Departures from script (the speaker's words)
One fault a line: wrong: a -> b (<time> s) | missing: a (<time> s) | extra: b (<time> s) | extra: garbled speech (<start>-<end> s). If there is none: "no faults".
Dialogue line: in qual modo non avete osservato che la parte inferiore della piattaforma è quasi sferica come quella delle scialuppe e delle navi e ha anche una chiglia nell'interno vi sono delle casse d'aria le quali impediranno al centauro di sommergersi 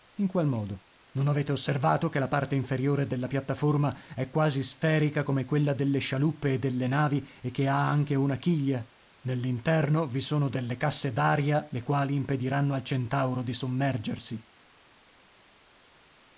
extra: che (7.5 s)